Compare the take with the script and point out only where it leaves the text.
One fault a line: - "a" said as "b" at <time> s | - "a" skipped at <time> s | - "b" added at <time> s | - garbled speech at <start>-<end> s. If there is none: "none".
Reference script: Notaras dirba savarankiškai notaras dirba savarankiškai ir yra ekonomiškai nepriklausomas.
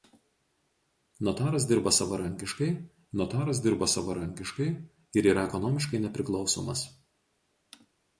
none